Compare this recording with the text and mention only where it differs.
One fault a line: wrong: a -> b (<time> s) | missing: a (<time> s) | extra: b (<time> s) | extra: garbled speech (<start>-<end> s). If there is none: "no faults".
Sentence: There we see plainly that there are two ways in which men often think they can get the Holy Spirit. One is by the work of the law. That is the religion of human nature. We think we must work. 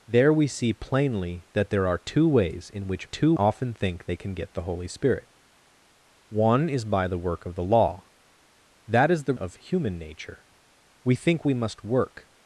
wrong: men -> two (3.0 s)
missing: religion (9.3 s)